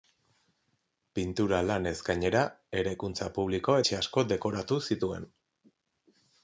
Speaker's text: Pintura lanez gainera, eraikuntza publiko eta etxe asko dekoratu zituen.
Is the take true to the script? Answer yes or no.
no